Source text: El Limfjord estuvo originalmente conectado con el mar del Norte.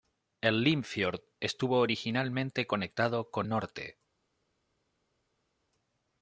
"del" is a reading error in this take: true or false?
true